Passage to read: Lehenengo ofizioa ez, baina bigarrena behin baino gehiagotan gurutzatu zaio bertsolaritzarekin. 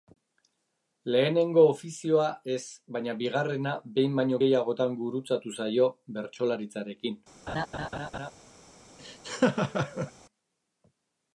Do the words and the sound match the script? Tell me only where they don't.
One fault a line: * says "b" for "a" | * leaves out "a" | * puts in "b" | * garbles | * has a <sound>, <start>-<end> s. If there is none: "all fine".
* has a laugh, 7.5-8.3 s
* has a laugh, 9.0-10.1 s